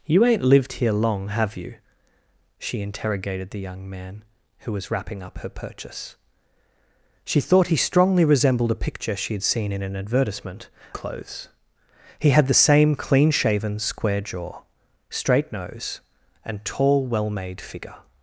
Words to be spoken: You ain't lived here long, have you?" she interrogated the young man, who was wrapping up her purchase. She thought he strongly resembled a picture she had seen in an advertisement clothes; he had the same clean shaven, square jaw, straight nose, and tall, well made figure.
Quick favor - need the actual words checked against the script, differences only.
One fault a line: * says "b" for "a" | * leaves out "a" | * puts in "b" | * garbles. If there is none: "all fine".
all fine